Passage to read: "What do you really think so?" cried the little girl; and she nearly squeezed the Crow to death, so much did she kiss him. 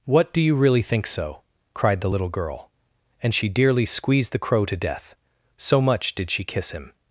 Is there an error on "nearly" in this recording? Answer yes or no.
yes